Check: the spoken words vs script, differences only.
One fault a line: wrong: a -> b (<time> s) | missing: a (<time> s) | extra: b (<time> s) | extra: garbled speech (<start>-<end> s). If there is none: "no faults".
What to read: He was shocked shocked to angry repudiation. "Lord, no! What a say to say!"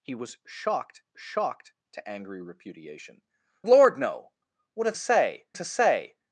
no faults